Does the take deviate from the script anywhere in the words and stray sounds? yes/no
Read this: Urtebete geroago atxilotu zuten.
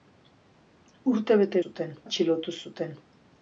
yes